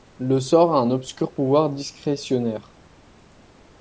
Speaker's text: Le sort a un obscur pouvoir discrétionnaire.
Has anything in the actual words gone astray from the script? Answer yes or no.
no